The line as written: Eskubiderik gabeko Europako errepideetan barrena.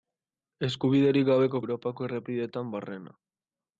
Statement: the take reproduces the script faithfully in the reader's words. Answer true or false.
true